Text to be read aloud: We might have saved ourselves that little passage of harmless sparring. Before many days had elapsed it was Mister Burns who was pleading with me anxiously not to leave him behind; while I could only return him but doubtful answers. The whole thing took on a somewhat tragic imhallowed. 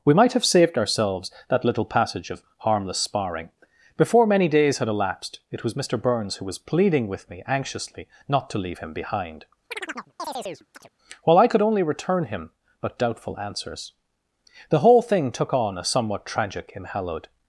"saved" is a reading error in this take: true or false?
false